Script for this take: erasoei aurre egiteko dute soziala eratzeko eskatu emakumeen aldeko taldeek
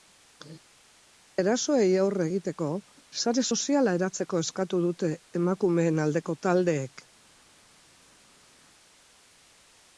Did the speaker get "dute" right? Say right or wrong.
wrong